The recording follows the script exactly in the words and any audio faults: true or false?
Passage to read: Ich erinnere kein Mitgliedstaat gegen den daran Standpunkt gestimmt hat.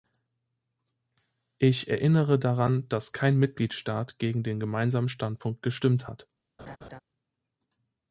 false